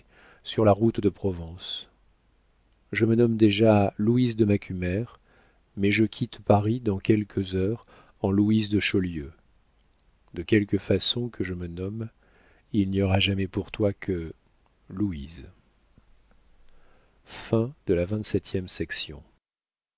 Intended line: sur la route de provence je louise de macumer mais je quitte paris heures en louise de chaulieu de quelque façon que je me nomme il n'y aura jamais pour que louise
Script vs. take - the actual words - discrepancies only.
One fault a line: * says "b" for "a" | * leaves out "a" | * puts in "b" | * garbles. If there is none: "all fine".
* puts in "me nomme déjà"
* puts in "dans quelques"
* puts in "toi"